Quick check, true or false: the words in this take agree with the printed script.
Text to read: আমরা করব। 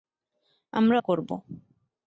true